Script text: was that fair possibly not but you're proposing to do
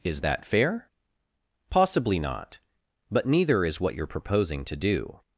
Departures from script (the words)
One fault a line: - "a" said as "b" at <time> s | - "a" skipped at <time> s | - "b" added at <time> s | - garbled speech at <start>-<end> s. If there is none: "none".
- "was" said as "is" at 0.0 s
- "neither is what" added at 3.2 s